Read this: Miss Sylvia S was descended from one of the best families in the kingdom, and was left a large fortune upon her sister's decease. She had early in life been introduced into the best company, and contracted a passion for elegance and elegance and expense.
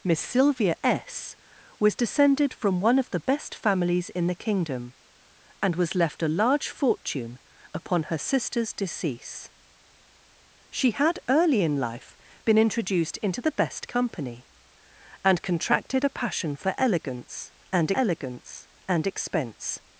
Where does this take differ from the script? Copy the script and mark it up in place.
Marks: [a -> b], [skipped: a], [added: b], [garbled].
Miss Sylvia S was descended from one of the best families in the kingdom, and was left a large fortune upon her sister's decease. She had early in life been introduced into the best company, and contracted a passion for elegance and elegance and expense.